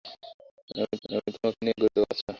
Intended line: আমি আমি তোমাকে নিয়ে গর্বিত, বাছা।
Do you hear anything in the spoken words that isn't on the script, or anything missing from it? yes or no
no